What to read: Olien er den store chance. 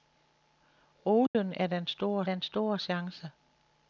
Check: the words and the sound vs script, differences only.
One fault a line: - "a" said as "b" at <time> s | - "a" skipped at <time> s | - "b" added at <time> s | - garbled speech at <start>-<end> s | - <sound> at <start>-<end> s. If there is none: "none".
- dropout at 1.3-1.3 s
- "den store" added at 2.2 s